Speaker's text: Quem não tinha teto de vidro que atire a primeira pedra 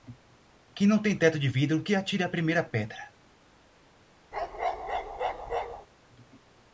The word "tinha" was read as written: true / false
false